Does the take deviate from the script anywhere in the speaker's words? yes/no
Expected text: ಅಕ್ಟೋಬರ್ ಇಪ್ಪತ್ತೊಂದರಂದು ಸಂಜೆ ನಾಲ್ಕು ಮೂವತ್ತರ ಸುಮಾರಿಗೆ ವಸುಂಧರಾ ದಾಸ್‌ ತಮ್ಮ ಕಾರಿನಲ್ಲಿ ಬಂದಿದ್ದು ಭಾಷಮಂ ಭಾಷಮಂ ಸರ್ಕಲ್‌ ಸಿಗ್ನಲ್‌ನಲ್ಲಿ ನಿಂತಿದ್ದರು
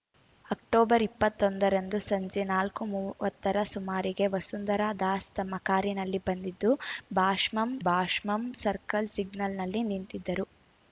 no